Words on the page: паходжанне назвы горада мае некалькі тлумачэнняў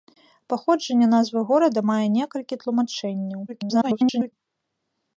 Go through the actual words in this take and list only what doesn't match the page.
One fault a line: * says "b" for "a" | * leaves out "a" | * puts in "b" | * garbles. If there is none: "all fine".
* garbles